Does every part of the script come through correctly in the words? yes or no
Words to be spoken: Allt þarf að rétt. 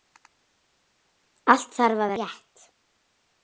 yes